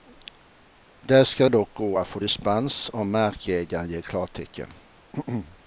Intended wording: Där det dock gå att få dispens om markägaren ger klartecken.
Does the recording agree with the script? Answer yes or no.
no